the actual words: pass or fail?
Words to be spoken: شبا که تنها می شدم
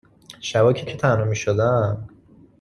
fail